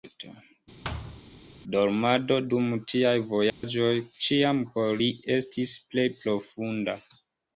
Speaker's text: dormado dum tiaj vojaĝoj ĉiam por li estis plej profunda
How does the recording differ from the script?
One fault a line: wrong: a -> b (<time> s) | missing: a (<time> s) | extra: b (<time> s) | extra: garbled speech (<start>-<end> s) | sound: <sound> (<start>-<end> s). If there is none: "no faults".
sound: thud (0.8-1.2 s)
sound: dropout (3.5-3.6 s)